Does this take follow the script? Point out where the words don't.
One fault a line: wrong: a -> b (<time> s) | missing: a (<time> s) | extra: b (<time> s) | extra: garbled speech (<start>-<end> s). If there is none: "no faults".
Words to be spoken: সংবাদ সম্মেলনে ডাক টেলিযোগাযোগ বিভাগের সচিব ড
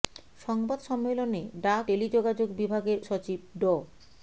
no faults